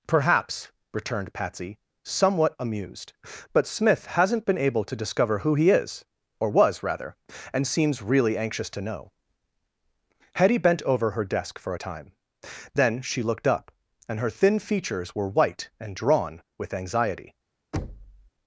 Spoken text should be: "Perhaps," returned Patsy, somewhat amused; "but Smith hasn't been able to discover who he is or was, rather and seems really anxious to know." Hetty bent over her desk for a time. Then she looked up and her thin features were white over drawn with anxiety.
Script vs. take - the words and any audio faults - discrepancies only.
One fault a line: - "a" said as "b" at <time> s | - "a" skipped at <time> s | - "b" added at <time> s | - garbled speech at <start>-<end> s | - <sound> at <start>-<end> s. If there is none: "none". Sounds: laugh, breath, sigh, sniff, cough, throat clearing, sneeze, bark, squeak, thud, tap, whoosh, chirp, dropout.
- "over" said as "and" at 15.8 s
- thud at 17.7-18.3 s